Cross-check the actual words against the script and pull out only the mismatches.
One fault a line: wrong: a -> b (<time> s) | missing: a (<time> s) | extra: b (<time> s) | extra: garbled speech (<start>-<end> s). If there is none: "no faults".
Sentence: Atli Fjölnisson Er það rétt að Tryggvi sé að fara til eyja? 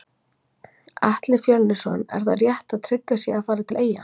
no faults